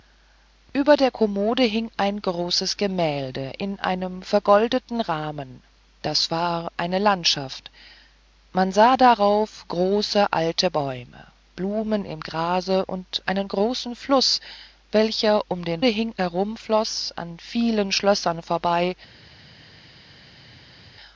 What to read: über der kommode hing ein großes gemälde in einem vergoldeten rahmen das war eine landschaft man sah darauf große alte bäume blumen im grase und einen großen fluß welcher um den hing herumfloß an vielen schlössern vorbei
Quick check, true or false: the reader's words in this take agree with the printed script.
true